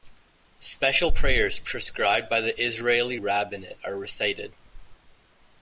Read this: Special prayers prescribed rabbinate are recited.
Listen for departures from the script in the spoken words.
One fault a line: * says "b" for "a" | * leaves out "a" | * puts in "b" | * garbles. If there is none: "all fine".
* puts in "by the Israeli"